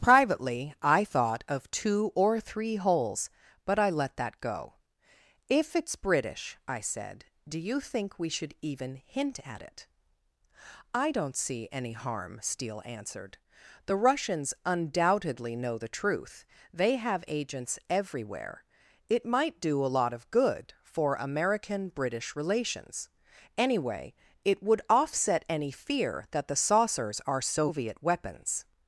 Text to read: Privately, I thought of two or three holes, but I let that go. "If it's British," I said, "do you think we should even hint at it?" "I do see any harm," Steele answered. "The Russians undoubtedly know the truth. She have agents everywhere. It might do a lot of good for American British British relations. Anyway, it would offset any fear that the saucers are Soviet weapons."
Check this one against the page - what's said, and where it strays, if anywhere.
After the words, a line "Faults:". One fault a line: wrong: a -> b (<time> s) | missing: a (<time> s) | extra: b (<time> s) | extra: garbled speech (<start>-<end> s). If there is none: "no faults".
Privately, I thought of two or three holes, but I let that go. "If it's British," I said, "do you think we should even hint at it?" "I don't see any harm," Steele answered. "The Russians undoubtedly know the truth. They have agents everywhere. It might do a lot of good for American British relations. Anyway, it would offset any fear that the saucers are Soviet weapons."
Faults:
wrong: do -> don't (11.1 s)
wrong: She -> They (16.7 s)
missing: British (22.4 s)